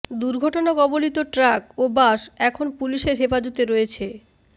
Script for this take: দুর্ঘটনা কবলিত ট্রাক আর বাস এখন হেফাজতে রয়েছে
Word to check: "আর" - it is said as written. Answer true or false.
false